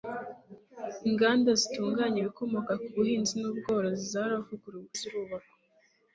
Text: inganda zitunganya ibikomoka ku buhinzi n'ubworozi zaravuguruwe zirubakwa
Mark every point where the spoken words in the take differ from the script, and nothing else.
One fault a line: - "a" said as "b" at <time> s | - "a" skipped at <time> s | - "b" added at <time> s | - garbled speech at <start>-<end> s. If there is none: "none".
none